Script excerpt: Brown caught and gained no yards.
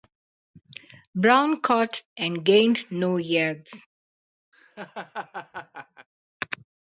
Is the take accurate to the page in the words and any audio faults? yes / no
no